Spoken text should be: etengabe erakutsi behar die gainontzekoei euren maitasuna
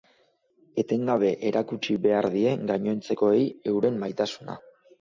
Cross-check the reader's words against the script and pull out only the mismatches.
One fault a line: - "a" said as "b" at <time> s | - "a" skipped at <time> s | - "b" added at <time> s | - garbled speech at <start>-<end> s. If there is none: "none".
none